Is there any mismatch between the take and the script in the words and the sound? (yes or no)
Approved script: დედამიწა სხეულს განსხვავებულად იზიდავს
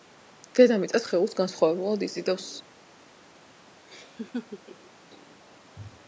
yes